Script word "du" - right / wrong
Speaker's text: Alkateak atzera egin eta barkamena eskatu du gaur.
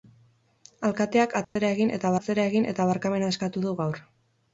right